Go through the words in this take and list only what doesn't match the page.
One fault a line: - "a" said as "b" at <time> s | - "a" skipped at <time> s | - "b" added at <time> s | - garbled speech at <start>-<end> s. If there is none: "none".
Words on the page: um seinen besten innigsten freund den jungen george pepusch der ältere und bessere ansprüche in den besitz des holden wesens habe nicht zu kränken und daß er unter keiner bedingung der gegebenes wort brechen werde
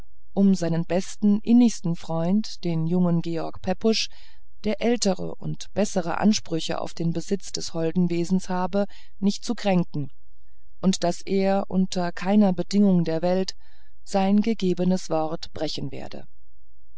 - "in" said as "auf" at 6.8 s
- "welt sein" added at 13.2 s